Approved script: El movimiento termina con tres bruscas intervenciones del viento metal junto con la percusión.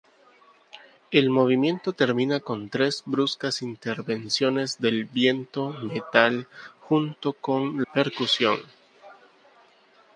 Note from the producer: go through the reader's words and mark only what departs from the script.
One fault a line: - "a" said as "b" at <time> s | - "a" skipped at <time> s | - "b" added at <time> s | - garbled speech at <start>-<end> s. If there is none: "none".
- "la" skipped at 7.8 s